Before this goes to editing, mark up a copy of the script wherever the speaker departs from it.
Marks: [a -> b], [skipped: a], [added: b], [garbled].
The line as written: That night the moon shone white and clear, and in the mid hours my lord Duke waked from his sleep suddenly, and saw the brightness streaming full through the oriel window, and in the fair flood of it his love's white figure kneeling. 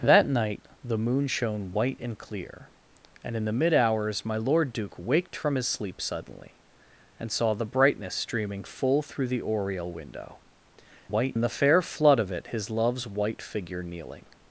That night the moon shone white and clear, and in the mid hours my lord Duke waked from his sleep suddenly, and saw the brightness streaming full through the oriel window, [and -> white] in the fair flood of it his love's white figure kneeling.